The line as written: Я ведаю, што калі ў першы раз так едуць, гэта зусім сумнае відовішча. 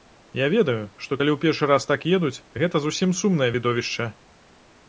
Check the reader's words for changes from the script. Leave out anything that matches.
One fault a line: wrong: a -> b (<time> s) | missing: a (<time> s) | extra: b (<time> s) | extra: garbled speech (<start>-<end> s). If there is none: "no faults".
no faults